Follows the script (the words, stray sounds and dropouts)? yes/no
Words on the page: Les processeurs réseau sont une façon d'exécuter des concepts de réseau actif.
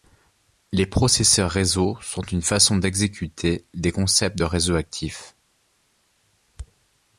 yes